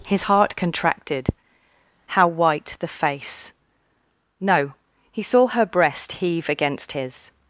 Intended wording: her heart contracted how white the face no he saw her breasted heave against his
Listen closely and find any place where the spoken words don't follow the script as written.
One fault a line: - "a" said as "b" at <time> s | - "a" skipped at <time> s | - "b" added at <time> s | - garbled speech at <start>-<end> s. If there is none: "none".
- "her" said as "his" at 0.1 s
- "breasted" said as "breast" at 5.7 s